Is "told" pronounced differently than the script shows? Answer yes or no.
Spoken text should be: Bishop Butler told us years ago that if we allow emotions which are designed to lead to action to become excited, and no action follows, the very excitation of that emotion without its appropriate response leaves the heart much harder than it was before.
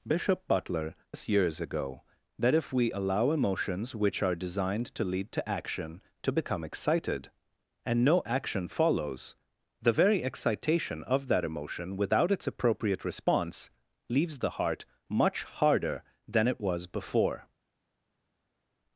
yes